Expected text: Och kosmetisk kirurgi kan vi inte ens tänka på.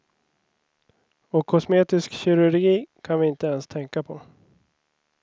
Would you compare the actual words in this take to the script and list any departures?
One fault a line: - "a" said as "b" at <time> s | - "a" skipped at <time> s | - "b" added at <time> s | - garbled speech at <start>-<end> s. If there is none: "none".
none